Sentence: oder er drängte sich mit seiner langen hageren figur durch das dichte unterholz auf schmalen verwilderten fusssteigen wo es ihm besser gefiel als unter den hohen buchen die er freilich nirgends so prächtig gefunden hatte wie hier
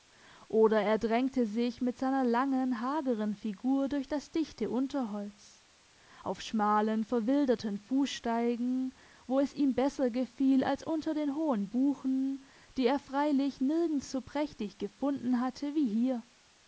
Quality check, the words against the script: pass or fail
pass